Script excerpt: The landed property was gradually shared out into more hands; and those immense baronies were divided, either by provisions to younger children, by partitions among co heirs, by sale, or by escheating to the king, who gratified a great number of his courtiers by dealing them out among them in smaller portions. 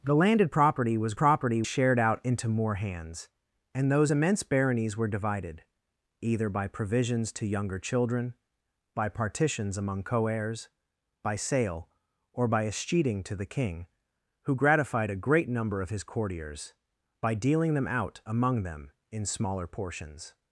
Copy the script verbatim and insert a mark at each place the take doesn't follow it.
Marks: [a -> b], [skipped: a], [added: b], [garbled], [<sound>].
The landed property was [gradually -> property] shared out into more hands; and those immense baronies were divided, either by provisions to younger children, by partitions among co heirs, by sale, or by escheating to the king, who gratified a great number of his courtiers by dealing them out among them in smaller portions.